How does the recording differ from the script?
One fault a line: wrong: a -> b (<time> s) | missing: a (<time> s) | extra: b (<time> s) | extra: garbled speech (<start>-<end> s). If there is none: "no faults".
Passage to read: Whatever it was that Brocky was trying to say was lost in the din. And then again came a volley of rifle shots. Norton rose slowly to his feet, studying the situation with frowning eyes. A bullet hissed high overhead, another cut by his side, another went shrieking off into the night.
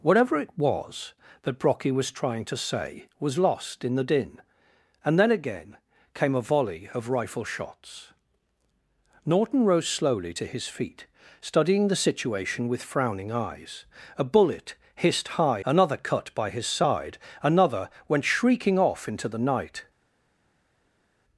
missing: overhead (15.6 s)